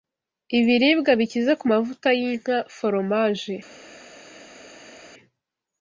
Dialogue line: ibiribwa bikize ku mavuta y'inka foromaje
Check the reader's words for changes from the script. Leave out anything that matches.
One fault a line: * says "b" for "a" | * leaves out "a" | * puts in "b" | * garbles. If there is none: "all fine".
all fine